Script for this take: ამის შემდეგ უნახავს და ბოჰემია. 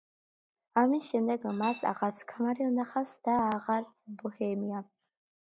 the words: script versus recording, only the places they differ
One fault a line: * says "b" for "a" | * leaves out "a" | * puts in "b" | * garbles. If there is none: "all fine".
* puts in "მას აღარც ქმარი"
* puts in "აღარც"